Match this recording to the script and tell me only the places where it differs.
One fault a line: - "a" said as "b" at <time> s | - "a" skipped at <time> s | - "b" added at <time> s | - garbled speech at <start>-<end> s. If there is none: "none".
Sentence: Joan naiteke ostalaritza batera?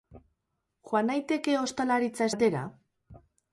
none